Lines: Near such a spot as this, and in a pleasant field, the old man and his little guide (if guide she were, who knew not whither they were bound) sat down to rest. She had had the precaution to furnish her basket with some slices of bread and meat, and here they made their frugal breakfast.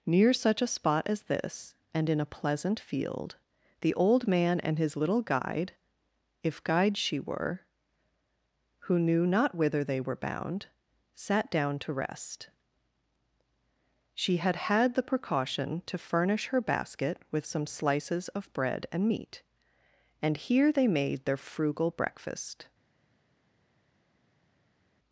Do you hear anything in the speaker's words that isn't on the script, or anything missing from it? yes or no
no